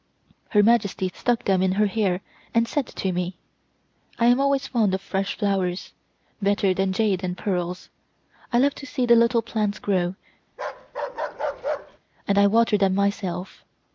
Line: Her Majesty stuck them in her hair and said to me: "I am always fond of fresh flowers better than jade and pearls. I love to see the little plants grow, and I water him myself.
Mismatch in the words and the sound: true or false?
true